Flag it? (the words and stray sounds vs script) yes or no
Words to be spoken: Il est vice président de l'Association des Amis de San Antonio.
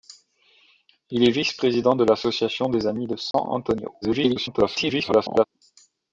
yes